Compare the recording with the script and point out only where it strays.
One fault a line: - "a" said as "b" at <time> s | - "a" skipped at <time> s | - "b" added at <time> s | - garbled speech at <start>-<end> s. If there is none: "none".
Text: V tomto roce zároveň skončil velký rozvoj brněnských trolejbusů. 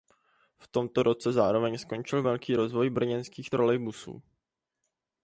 none